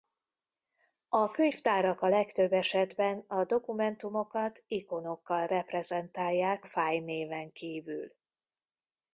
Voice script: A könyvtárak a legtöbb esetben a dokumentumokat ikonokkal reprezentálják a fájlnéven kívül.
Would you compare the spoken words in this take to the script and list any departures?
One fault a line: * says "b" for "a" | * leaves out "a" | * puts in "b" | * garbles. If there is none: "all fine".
* leaves out "a"